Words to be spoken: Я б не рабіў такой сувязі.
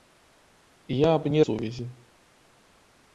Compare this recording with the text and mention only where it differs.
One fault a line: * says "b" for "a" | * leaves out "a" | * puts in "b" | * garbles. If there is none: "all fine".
* leaves out "рабіў такой"